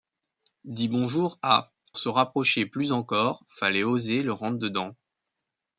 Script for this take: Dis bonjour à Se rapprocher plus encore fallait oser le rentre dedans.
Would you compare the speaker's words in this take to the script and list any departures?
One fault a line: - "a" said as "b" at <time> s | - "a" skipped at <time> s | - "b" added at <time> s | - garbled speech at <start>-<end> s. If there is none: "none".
none